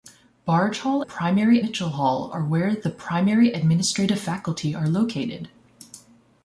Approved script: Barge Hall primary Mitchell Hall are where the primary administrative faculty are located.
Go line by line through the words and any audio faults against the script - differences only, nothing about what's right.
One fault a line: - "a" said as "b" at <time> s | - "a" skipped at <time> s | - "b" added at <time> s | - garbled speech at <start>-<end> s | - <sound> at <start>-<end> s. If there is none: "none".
none